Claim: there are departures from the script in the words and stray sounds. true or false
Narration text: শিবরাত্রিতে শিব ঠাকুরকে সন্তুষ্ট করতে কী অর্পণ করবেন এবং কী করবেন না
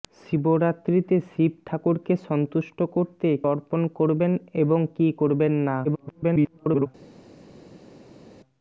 true